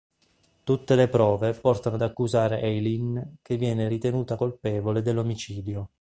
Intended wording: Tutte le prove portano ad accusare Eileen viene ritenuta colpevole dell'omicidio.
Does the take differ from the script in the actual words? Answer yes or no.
yes